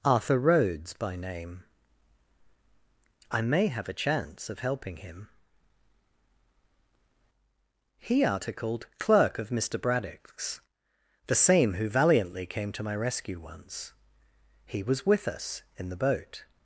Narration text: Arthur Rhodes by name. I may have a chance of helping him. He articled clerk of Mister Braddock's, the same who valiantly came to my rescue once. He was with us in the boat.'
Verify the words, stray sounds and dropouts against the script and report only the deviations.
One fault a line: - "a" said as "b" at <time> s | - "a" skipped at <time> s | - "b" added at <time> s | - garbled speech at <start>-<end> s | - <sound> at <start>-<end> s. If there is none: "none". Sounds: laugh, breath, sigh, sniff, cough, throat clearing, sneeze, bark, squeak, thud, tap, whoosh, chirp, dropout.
none